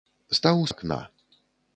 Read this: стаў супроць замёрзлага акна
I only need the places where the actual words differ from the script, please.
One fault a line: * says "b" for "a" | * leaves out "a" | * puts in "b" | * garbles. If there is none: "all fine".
* leaves out "супроць замёрзлага"